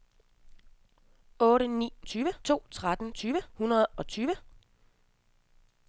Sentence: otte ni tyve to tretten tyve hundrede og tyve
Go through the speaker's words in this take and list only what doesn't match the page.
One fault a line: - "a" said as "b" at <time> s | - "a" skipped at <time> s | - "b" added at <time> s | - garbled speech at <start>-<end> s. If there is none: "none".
none